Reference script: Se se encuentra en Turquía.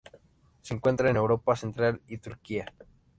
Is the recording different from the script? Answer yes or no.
yes